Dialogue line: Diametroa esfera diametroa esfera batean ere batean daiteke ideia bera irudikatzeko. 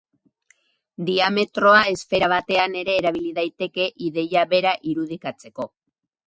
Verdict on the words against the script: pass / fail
fail